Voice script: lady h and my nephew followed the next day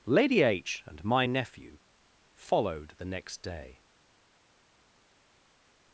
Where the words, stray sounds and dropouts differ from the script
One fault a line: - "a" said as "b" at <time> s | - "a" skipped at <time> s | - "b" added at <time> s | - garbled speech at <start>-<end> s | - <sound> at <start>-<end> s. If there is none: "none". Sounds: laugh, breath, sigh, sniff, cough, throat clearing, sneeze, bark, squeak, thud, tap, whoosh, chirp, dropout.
none